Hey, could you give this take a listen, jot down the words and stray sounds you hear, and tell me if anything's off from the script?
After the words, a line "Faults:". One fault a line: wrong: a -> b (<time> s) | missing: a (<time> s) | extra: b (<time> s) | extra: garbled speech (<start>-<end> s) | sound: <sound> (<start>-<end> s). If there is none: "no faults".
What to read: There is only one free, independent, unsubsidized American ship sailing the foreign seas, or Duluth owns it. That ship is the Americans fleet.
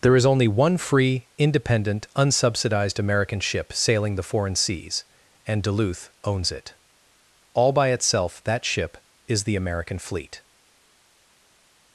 There is only one free, independent, unsubsidized American ship sailing the foreign seas, and Duluth owns it. All by itself that ship is the American fleet.
Faults:
wrong: or -> and (5.5 s)
extra: All by itself (7.5 s)
wrong: Americans -> American (9.6 s)